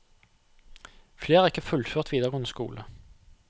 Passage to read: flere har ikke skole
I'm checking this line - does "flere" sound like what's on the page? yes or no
yes